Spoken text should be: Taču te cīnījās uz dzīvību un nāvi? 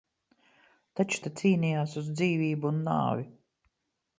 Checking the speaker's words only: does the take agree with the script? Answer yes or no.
yes